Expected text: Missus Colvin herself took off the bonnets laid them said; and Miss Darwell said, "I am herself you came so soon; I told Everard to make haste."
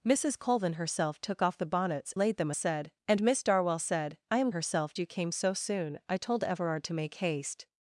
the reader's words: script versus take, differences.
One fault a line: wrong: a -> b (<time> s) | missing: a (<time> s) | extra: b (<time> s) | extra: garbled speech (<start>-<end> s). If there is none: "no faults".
no faults